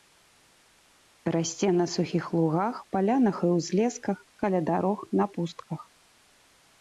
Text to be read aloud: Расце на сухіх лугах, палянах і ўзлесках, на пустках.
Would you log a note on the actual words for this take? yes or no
yes